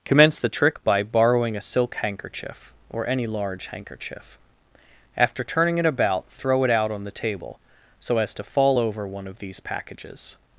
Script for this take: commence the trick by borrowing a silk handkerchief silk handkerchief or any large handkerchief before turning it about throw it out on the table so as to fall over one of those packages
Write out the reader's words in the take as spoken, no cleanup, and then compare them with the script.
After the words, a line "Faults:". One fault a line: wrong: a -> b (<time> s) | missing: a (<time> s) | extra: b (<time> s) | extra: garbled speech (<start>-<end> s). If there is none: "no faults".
commence the trick by borrowing a silk handkerchief or any large handkerchief after turning it about throw it out on the table so as to fall over one of these packages
Faults:
missing: silk handkerchief (2.7 s)
wrong: before -> after (5.2 s)
wrong: those -> these (9.4 s)